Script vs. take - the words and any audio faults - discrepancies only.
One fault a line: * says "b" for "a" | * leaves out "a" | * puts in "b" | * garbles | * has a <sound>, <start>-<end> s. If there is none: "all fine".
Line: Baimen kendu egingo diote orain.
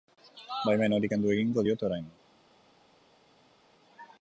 * puts in "hori"